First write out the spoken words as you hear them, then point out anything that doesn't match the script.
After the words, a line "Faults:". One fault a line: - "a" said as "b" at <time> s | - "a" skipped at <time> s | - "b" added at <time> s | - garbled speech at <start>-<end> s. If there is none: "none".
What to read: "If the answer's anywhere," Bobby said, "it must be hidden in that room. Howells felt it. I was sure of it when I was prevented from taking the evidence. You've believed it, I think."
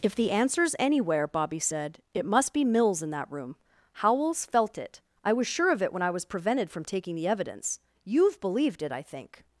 "If the answer's anywhere," Bobby said, "it must be mills in that room. Howells felt it. I was sure of it when I was prevented from taking the evidence. You've believed it, I think."
Faults:
- "hidden" said as "mills" at 2.6 s